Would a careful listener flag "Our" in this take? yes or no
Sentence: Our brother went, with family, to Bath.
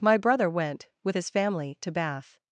yes